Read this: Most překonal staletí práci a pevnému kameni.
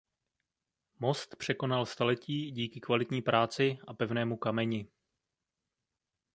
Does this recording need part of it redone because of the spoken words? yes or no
yes